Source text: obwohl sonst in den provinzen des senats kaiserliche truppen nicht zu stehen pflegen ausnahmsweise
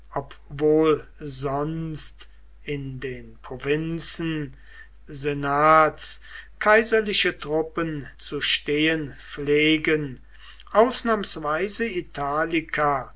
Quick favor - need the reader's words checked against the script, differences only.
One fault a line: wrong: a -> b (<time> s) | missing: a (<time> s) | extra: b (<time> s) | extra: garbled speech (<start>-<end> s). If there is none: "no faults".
missing: des (4.6 s)
missing: nicht (8.1 s)